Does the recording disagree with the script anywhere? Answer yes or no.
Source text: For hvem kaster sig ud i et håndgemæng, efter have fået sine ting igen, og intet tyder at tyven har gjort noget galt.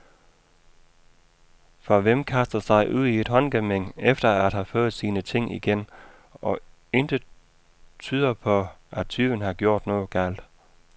yes